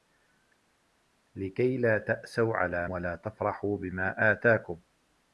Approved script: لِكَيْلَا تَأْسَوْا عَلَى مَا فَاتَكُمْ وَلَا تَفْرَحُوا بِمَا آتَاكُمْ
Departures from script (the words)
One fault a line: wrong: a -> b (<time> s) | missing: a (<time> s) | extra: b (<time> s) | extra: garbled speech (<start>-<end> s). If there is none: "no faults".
missing: مَا فَاتَكُمْ (2.9 s)